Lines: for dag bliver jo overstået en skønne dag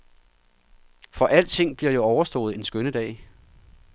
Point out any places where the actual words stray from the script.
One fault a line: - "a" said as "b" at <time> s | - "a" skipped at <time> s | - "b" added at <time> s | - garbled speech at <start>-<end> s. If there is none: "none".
- "dag" said as "alting" at 1.3 s